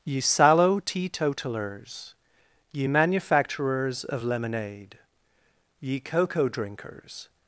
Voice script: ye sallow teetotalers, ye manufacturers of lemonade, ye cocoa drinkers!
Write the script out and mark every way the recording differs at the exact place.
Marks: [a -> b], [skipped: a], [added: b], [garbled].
ye sallow teetotalers, ye manufacturers of lemonade, ye cocoa drinkers!